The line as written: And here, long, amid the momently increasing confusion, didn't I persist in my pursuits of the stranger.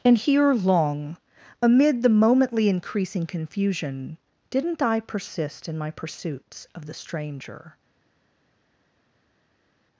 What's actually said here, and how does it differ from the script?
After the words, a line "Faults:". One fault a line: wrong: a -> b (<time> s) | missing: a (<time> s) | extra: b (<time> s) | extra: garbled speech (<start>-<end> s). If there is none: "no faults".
And here, long, amid the momently increasing confusion, didn't I persist in my pursuits of the stranger.
Faults:
no faults